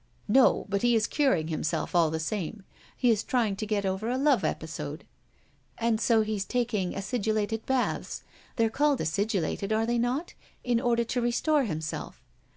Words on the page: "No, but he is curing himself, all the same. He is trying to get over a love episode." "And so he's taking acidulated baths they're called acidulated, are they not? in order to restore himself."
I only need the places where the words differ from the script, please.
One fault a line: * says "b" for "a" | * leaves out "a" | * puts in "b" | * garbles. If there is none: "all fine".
all fine